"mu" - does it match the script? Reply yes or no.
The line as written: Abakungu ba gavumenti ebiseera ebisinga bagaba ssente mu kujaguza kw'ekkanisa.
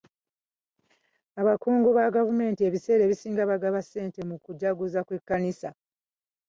yes